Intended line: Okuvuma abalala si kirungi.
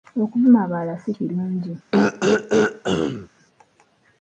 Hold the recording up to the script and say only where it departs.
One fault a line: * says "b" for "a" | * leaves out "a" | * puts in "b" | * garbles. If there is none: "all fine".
all fine